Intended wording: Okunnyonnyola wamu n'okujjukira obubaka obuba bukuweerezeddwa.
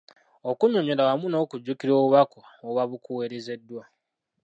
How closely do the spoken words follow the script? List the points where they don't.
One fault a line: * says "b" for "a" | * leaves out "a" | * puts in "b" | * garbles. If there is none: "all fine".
all fine